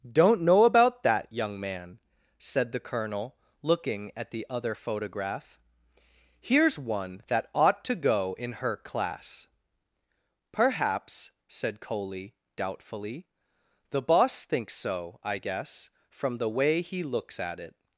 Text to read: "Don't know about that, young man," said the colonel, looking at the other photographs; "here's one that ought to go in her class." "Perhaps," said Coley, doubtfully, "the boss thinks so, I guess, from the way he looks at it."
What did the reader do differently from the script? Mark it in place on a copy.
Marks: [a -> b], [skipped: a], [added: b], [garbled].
"Don't know about that, young man," said the colonel, looking at the other [photographs; -> photograph] "here's one that ought to go in her class." "Perhaps," said Coley, doubtfully, "the boss thinks so, I guess, from the way he looks at it."